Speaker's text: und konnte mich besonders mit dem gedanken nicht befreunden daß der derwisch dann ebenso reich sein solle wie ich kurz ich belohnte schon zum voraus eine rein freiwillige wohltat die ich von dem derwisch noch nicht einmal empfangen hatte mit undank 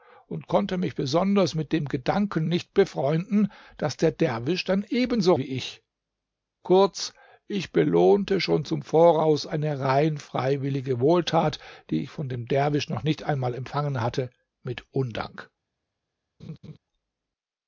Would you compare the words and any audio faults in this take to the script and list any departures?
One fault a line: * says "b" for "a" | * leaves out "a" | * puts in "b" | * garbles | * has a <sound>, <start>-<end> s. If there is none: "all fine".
* leaves out "reich sein solle"
* has a laugh, 16.4-16.8 s